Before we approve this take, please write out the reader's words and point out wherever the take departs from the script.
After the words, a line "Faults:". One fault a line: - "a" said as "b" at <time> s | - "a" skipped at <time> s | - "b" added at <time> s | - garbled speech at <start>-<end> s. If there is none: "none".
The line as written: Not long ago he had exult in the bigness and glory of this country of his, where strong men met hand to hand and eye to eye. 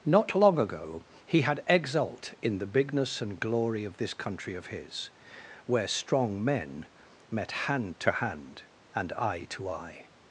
Not long ago he had exult in the bigness and glory of this country of his, where strong men met hand to hand and eye to eye.
Faults:
none